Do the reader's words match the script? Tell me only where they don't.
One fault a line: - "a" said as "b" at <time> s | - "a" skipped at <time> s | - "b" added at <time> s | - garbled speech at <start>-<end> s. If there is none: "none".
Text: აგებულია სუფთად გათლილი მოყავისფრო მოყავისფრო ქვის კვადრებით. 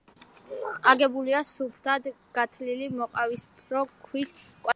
- "მოყავისფრო" skipped at 3.8 s